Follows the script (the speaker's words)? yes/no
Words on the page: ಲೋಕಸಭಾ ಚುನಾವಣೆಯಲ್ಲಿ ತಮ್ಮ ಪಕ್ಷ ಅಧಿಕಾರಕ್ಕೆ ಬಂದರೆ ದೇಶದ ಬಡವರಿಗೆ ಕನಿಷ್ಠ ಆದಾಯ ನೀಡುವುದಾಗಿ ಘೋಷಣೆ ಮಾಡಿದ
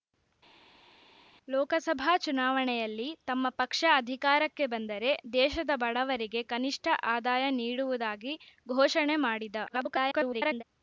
no